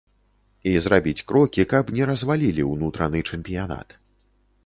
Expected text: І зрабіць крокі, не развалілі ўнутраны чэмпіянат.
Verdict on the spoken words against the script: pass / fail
fail